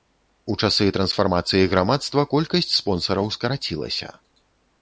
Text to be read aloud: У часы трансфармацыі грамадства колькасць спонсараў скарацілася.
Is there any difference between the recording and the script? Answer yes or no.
no